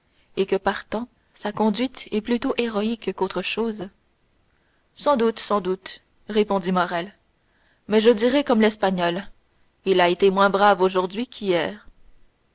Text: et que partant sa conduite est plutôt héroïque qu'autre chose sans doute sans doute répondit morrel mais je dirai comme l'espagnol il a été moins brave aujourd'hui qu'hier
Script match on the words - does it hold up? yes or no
yes